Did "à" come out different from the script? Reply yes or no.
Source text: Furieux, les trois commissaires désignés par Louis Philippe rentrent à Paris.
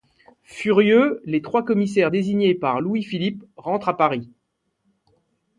no